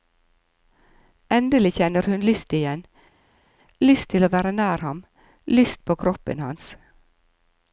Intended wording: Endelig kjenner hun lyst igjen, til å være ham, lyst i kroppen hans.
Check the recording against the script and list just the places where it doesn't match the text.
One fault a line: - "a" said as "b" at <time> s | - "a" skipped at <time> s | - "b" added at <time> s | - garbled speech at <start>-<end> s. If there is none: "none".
- "lyst" added at 3.9 s
- "nær" added at 4.6 s
- "i" said as "på" at 5.9 s